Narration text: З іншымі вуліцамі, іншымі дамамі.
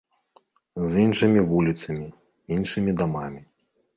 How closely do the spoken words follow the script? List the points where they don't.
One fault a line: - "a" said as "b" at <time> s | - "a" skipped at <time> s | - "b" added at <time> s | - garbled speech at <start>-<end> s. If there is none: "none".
none